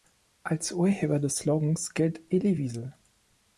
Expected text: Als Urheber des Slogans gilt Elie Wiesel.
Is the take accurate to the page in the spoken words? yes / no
yes